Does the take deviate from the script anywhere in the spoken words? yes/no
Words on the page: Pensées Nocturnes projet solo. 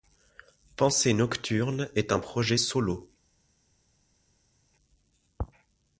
yes